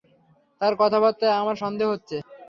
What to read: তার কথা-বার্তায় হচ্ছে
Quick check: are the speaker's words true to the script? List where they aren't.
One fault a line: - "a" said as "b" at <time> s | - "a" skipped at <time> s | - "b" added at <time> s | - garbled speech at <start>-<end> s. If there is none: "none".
- "আমার সন্দেহ" added at 1.4 s